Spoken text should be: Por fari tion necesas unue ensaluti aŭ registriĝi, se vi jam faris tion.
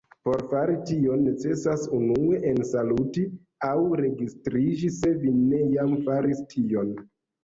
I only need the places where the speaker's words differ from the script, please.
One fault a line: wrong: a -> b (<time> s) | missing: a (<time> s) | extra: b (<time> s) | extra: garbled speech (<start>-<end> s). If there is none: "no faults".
extra: ne (5.4 s)